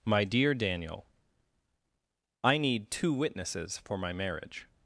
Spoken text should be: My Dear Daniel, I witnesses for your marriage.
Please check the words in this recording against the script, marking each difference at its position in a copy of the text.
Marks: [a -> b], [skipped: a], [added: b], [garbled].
My Dear Daniel, I [added: need two] witnesses for [your -> my] marriage.